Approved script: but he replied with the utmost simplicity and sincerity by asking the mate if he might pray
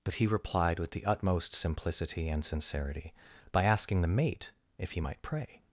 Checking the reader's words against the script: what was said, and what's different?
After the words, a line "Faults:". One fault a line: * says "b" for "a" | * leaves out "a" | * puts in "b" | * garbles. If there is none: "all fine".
but he replied with the utmost simplicity and sincerity by asking the mate if he might pray
Faults:
all fine